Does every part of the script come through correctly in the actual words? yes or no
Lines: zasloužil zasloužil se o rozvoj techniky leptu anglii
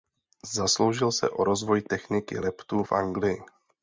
no